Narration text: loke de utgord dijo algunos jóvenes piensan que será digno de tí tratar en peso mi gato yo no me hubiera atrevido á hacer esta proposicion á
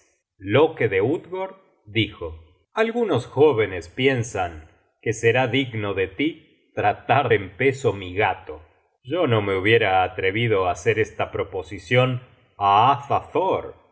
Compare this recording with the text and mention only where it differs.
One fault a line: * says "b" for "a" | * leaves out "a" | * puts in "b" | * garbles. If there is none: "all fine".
all fine